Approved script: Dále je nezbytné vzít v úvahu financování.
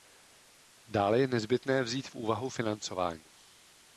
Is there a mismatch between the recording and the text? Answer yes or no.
no